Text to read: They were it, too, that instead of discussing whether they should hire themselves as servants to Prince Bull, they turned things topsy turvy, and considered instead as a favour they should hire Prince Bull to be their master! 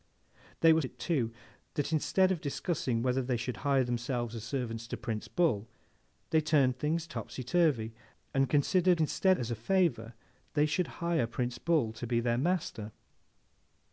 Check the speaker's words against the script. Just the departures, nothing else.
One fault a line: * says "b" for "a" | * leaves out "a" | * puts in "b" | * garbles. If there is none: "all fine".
all fine